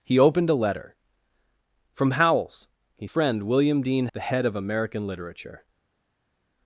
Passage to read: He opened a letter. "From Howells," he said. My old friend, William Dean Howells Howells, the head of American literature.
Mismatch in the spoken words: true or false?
true